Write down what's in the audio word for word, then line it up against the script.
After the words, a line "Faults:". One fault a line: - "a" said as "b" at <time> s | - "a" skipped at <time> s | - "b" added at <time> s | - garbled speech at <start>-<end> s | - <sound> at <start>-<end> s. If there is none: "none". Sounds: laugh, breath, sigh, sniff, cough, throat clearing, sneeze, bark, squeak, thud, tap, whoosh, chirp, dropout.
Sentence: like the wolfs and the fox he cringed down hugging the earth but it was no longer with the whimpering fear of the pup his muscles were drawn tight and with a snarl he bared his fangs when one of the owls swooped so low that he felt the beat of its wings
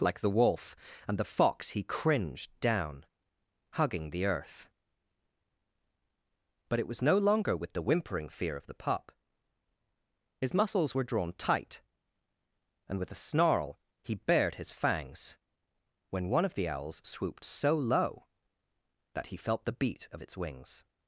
like the wolf and the fox he cringed down hugging the earth but it was no longer with the whimpering fear of the pup his muscles were drawn tight and with a snarl he bared his fangs when one of the owls swooped so low that he felt the beat of its wings
Faults:
- "wolfs" said as "wolf" at 0.3 s